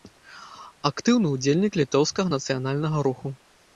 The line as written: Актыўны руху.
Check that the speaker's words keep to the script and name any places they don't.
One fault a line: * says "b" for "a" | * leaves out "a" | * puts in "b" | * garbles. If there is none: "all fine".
* puts in "ўдзельнік літоўскага нацыянальнага"